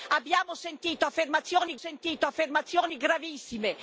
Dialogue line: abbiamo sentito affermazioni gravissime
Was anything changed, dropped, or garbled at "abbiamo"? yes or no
no